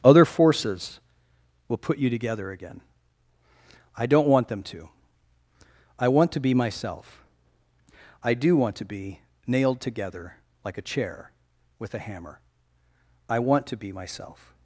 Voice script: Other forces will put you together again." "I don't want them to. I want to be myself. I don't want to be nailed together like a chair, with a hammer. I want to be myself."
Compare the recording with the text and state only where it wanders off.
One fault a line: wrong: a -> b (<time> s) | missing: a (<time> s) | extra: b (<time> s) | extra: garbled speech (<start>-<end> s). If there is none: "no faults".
wrong: don't -> do (8.3 s)